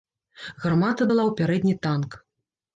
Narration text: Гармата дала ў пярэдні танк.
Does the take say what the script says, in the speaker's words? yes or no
yes